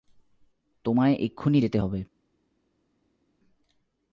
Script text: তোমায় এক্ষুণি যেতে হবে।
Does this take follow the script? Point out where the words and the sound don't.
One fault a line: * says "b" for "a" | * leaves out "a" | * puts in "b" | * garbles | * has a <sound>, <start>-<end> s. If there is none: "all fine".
all fine